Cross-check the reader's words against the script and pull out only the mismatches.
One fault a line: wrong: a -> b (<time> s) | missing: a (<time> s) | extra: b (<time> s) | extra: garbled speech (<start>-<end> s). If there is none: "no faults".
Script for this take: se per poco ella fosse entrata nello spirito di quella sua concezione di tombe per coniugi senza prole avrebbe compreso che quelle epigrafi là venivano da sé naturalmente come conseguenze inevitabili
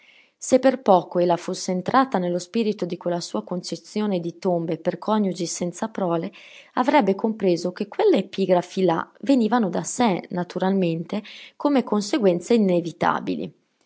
no faults